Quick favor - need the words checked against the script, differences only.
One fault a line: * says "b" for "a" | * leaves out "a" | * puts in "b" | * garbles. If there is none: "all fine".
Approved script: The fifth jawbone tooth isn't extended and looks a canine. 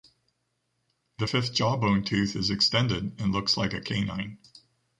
* says "is" for "isn't"
* puts in "like"